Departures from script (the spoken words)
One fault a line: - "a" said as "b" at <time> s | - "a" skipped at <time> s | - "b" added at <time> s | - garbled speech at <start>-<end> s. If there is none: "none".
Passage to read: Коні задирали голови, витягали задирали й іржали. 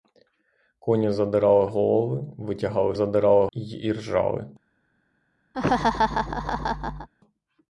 none